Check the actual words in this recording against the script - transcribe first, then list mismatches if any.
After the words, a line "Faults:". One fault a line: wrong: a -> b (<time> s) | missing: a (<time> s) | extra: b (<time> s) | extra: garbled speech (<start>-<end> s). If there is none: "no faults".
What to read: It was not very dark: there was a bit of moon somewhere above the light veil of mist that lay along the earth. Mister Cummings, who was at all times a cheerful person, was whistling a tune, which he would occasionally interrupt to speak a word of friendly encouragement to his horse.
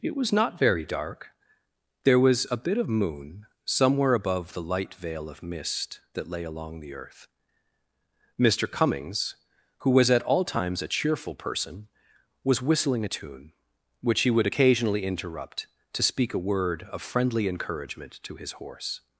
It was not very dark: there was a bit of moon somewhere above the light veil of mist that lay along the earth. Mister Cummings, who was at all times a cheerful person, was whistling a tune, which he would occasionally interrupt to speak a word of friendly encouragement to his horse.
Faults:
no faults